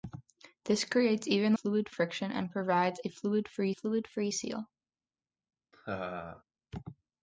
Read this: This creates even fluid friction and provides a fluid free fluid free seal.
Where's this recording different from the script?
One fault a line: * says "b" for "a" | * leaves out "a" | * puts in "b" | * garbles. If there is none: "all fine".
all fine